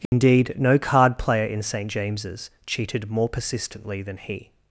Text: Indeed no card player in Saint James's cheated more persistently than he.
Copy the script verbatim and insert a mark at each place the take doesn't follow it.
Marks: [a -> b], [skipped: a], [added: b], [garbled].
Indeed no card player in Saint James's cheated more persistently than he.